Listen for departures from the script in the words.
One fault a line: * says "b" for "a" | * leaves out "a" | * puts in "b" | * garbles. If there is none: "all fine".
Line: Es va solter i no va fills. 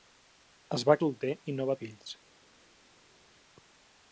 all fine